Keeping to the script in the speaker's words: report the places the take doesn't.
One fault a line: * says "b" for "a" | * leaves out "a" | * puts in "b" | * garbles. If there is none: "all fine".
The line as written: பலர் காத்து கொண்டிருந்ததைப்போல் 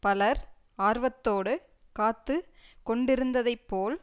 * puts in "ஆர்வத்தோடு"